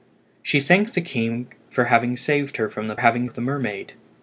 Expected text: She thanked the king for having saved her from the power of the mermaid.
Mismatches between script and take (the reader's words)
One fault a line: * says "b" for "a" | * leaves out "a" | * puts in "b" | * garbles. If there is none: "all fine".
* says "having" for "power"